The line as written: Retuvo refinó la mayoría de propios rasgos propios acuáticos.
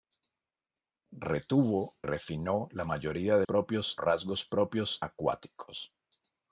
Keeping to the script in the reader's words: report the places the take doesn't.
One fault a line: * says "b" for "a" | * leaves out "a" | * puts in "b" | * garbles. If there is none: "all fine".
all fine